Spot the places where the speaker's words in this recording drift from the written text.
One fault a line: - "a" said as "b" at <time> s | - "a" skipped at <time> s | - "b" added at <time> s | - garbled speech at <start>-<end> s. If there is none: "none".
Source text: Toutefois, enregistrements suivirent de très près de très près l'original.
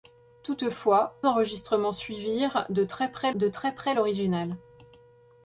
none